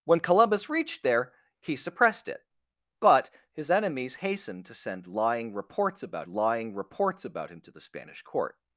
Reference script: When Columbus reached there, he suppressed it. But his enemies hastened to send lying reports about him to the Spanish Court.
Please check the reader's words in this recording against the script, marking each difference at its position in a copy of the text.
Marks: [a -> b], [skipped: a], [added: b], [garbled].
When Columbus reached there, he suppressed it. But his enemies hastened to send lying reports about [added: lying reports about] him to the Spanish Court.